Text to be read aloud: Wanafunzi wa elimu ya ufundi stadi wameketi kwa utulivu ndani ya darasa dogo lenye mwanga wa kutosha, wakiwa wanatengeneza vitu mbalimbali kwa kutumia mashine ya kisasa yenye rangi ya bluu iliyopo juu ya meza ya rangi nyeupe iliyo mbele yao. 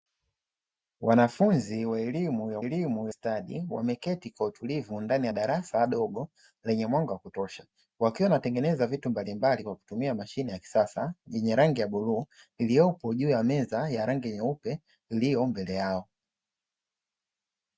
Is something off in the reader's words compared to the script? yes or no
yes